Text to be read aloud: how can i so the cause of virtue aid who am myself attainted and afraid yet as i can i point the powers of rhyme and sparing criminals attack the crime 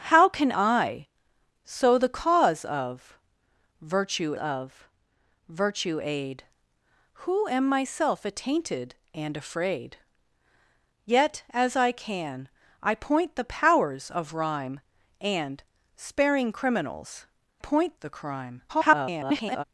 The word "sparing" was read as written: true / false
true